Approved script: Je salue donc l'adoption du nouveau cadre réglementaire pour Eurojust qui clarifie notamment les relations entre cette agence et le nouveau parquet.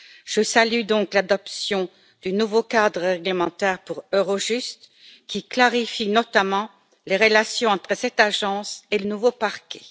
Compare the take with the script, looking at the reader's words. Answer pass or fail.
pass